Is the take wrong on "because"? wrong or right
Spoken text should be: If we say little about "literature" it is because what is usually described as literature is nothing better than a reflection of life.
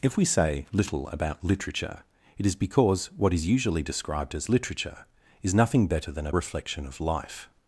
right